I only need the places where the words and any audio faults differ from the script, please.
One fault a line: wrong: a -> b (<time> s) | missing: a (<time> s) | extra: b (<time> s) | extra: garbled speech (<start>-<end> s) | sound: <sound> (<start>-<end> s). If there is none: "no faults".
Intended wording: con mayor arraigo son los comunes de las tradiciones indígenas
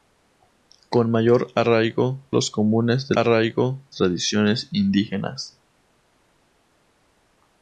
missing: son (2.3 s)
wrong: las -> arraigo (3.1 s)